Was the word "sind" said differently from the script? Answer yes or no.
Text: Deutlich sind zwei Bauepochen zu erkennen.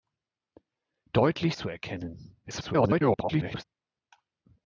yes